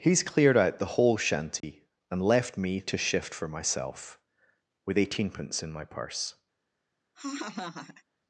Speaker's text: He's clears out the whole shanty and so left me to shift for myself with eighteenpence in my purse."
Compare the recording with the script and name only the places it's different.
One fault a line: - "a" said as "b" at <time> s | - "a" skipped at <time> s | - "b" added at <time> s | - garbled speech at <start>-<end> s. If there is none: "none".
- "clears" said as "cleared" at 0.2 s
- "so" skipped at 2.2 s